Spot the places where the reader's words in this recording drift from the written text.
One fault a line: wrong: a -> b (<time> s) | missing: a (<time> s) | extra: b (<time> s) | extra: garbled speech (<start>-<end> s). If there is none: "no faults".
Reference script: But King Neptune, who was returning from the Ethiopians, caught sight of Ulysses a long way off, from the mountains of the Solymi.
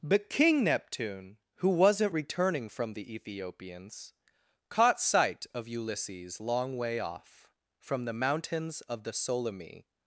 wrong: was -> wasn't (1.7 s)
missing: a (6.4 s)